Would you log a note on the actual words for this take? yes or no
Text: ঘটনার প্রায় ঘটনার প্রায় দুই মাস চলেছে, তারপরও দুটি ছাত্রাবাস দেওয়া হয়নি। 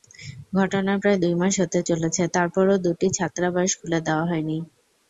yes